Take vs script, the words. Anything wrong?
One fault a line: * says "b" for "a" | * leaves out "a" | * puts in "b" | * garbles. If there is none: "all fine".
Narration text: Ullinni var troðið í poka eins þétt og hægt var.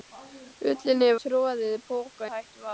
* leaves out "var"
* leaves out "eins þétt"